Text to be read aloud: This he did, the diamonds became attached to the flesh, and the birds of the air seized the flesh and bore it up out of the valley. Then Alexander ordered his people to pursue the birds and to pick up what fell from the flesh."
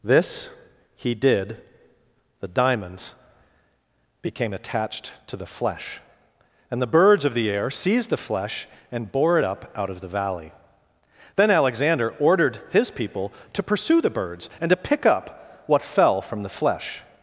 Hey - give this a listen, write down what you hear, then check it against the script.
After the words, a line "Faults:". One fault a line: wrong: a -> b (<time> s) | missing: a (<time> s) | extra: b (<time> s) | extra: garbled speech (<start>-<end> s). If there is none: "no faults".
This he did, the diamonds became attached to the flesh, and the birds of the air seized the flesh and bore it up out of the valley. Then Alexander ordered his people to pursue the birds and to pick up what fell from the flesh."
Faults:
no faults